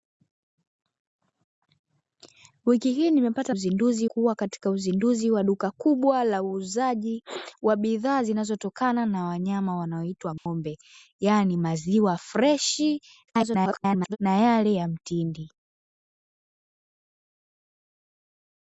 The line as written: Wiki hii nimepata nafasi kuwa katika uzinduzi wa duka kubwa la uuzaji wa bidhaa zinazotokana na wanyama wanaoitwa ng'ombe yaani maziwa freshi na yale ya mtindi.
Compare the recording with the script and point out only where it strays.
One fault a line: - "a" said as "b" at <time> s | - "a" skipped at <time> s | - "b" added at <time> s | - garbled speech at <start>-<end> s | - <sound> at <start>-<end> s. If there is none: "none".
- "nafasi" said as "uzinduzi" at 3.5 s
- dropout at 10.4-10.5 s
- garbled speech at 13.3-14.2 s